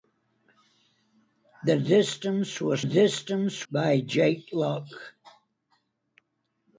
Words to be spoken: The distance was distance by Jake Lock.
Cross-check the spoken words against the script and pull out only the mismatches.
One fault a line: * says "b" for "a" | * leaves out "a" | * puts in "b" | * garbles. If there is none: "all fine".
all fine